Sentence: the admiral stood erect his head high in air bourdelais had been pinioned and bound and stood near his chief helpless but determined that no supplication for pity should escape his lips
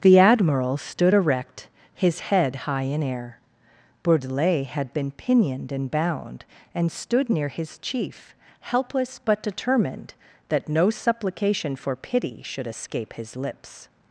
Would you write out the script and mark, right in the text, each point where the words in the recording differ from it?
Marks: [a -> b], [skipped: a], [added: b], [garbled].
the admiral stood erect his head high in air bourdelais had been pinioned and bound and stood near his chief helpless but determined that no supplication for pity should escape his lips